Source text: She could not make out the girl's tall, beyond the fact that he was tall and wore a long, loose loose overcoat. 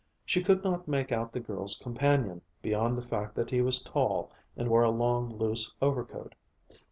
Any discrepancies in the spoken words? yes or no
yes